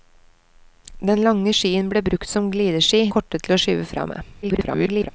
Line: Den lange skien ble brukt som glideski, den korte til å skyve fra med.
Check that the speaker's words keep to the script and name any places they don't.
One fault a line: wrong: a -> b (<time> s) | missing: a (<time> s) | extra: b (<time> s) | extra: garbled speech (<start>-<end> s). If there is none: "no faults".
missing: den (3.0 s)
extra: garbled speech (4.4-5.1 s)